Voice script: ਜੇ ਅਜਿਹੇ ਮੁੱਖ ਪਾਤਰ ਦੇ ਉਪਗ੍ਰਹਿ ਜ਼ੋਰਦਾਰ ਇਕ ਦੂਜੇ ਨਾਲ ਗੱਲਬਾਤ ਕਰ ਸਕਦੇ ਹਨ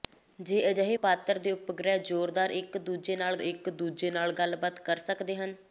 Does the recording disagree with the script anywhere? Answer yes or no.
yes